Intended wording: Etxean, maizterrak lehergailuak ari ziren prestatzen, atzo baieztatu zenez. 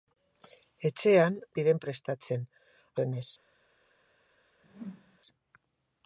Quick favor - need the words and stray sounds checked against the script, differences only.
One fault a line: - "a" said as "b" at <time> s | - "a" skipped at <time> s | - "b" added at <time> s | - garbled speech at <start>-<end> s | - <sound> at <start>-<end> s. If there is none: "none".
- "maizterrak lehergailuak ari" skipped at 1.4 s
- "atzo baieztatu" skipped at 2.5 s
- whoosh at 4.6-5.2 s